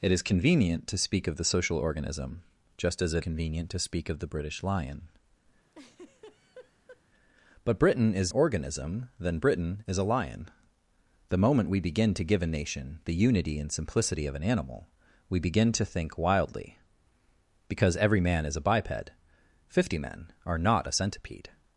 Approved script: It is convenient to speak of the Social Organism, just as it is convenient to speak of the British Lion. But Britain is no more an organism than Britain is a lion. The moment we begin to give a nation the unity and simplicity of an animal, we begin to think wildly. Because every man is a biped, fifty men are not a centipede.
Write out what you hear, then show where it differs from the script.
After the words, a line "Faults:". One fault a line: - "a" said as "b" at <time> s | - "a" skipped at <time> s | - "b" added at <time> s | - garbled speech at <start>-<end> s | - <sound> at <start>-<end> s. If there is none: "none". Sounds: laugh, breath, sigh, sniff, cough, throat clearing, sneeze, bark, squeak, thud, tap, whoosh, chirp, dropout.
It is convenient to speak of the Social Organism, just as it convenient to speak of the British Lion. But Britain is organism than Britain is a lion. The moment we begin to give a nation the unity and simplicity of an animal, we begin to think wildly. Because every man is a biped, fifty men are not a centipede.
Faults:
- "is" skipped at 3.2 s
- laugh at 5.7-7.0 s
- "no more an" skipped at 8.3 s